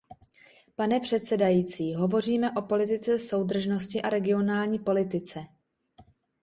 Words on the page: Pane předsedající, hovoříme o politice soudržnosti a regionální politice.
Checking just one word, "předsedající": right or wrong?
right